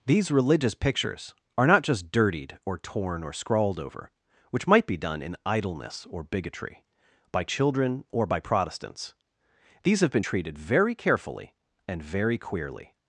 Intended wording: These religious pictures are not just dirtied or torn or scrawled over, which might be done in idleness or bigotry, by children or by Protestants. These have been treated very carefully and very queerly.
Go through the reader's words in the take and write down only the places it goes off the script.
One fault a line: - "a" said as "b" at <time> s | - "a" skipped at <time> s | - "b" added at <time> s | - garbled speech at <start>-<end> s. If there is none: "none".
none